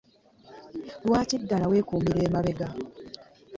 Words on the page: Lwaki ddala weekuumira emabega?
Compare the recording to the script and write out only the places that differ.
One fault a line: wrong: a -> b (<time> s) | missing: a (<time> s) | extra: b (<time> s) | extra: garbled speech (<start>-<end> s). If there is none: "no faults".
no faults